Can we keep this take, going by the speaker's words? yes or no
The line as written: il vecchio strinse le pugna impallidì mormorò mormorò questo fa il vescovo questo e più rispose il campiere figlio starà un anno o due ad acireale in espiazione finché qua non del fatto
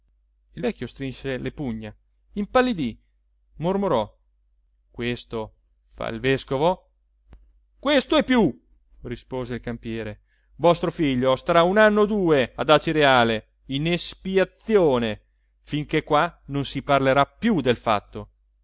no